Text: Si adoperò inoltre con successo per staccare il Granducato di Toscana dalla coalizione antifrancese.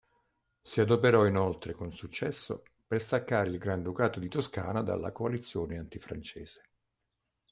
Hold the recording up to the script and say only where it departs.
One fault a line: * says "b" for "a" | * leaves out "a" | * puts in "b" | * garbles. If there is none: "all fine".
all fine